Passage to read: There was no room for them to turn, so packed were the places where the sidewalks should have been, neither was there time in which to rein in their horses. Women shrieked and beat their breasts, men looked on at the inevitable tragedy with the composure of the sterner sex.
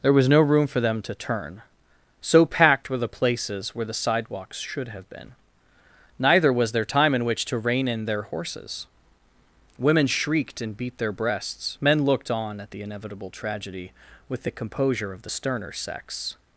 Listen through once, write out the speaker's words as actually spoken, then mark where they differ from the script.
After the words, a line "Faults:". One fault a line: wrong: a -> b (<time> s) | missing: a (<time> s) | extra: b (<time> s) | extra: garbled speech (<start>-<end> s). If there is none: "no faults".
There was no room for them to turn, so packed were the places where the sidewalks should have been, neither was there time in which to rein in their horses. Women shrieked and beat their breasts, men looked on at the inevitable tragedy with the composure of the sterner sex.
Faults:
no faults